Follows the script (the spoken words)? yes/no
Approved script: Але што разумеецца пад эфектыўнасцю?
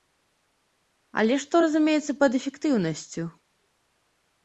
yes